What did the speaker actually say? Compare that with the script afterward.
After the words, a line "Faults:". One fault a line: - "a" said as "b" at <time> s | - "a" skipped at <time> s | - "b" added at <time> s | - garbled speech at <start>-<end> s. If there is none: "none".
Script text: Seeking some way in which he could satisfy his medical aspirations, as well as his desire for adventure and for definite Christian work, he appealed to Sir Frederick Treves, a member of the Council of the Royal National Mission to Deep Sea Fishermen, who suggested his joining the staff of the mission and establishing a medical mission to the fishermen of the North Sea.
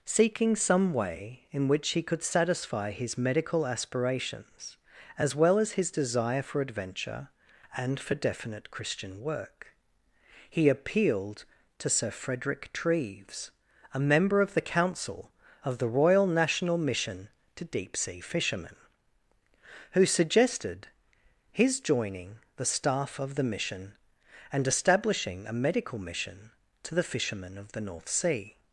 Seeking some way in which he could satisfy his medical aspirations, as well as his desire for adventure and for definite Christian work, he appealed to Sir Frederick Treves, a member of the Council of the Royal National Mission to Deep Sea Fishermen, who suggested his joining the staff of the mission and establishing a medical mission to the fishermen of the North Sea.
Faults:
none